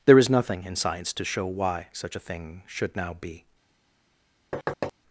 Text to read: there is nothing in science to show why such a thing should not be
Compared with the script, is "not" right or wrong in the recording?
wrong